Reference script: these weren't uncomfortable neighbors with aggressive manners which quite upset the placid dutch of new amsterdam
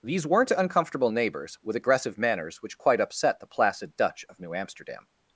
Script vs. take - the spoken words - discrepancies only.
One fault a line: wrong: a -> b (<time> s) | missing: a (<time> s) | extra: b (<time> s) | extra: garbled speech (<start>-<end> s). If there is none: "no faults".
no faults